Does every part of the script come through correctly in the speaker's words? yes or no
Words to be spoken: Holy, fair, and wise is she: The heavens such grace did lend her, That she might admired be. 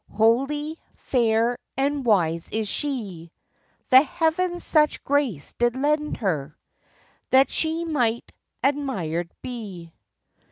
yes